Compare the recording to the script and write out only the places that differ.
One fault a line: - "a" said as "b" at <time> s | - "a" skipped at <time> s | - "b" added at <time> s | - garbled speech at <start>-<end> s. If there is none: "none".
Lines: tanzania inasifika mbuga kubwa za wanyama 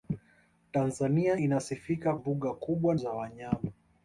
none